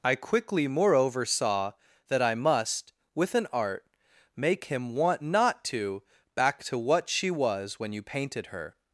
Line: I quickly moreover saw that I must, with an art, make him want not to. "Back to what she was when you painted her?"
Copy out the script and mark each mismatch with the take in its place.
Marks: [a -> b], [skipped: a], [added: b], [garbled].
I quickly moreover saw that I must, with an art, make him want not to. "Back to what she was when you painted her?"